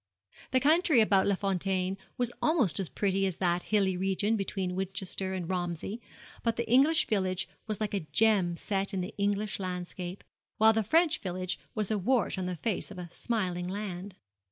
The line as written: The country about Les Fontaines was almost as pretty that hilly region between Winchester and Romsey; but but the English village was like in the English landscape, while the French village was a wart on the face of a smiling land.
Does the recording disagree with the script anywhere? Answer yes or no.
yes